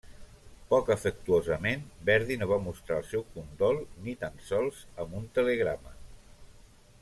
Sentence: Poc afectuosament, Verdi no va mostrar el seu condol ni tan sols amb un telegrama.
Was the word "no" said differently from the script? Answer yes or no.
no